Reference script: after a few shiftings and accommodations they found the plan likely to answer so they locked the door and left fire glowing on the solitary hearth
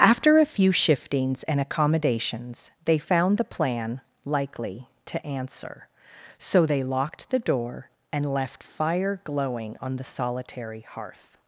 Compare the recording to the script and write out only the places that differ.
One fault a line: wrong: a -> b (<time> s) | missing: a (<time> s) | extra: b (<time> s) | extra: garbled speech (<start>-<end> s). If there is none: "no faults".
no faults